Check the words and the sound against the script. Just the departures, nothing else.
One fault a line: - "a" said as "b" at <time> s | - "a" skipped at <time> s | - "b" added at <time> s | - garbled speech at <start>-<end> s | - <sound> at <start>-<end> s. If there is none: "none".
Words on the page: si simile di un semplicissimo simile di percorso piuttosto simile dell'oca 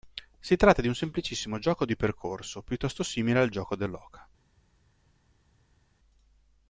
- "simile" said as "tratta" at 0.6 s
- "simile" said as "gioco" at 1.6 s
- "al gioco" added at 3.4 s